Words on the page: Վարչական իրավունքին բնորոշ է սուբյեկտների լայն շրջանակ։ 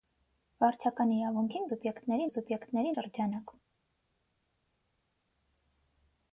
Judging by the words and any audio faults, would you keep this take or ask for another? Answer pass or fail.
fail